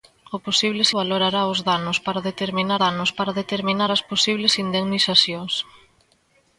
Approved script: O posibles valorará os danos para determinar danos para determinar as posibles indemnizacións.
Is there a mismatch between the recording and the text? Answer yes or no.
no